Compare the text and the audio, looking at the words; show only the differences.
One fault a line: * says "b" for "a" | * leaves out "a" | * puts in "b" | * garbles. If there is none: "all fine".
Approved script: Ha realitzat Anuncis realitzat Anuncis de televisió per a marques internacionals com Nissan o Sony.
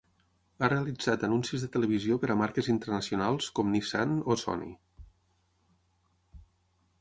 * leaves out "realitzat Anuncis"